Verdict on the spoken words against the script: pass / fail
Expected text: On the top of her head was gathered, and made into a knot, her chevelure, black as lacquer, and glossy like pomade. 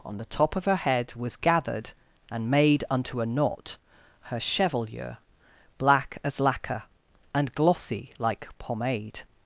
fail